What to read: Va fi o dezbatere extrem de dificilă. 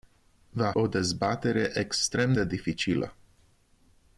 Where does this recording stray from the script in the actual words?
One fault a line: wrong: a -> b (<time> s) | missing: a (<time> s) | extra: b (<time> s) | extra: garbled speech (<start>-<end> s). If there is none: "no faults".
missing: fi (0.7 s)